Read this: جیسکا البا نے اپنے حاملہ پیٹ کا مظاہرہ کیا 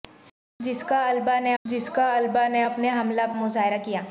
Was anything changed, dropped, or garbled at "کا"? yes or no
yes